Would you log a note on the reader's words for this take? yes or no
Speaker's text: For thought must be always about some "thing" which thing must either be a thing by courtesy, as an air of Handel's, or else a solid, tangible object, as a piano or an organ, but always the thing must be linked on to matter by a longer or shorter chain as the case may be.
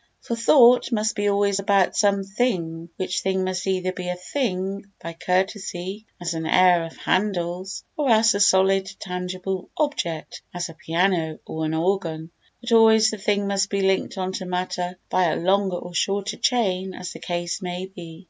no